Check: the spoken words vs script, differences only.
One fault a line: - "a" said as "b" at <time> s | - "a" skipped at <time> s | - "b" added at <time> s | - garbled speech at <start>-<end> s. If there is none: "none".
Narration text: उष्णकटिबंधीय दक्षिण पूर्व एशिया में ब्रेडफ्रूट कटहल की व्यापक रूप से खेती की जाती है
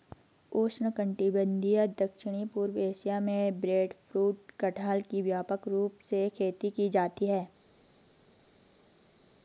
none